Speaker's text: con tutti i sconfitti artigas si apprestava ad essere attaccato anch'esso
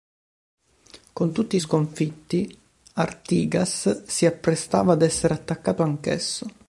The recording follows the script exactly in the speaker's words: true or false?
true